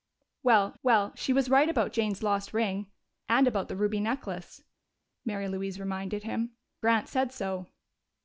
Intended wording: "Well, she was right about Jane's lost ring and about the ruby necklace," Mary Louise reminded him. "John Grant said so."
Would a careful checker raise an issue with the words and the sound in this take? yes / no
yes